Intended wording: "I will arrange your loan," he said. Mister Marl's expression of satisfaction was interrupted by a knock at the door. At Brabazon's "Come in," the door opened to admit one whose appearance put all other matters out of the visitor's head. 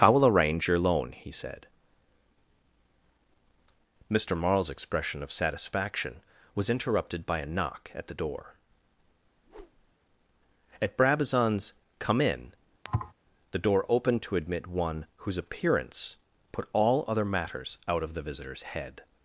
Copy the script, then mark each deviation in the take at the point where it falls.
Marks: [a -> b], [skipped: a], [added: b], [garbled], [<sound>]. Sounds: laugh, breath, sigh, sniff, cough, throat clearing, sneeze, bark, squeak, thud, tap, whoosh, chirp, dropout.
"I will arrange your loan," he said. Mister Marl's expression of satisfaction was interrupted by a knock at the door. [whoosh] At Brabazon's "Come in," [thud] the door opened to admit one whose appearance put all other matters out of the visitor's head.